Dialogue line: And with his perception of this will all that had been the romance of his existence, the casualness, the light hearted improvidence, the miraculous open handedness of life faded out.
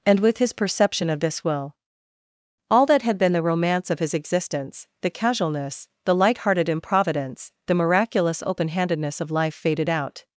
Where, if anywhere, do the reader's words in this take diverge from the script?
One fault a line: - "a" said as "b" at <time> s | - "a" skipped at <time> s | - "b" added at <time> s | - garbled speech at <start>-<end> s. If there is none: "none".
none